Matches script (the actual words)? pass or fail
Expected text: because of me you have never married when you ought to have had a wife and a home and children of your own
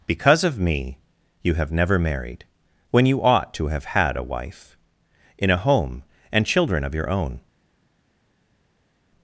fail